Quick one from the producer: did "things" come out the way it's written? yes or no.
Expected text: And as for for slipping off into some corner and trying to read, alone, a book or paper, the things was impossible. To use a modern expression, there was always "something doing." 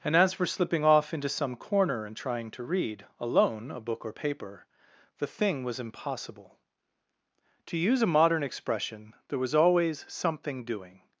no